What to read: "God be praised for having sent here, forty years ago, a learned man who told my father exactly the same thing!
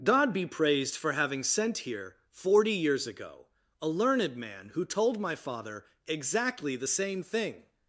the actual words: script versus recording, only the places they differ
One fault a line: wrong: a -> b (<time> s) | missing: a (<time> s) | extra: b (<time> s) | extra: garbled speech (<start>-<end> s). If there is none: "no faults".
no faults